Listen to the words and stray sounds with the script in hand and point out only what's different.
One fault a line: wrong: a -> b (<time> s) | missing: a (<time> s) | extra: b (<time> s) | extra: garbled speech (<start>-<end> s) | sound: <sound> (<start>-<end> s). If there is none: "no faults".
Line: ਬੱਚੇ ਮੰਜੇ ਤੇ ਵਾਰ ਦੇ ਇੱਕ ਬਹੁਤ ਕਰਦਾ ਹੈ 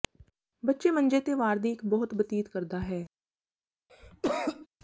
wrong: ਦੇ -> ਦੀ (1.6 s)
extra: ਬਤੀਤ (2.1 s)
sound: cough (3.9-4.7 s)